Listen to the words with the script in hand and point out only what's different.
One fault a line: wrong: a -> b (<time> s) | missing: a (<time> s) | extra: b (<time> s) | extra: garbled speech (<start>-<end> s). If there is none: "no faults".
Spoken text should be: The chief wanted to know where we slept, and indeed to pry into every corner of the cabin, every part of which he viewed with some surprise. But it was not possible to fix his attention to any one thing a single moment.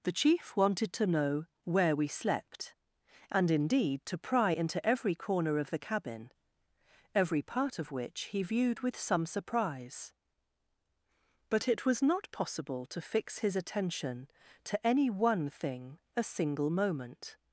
no faults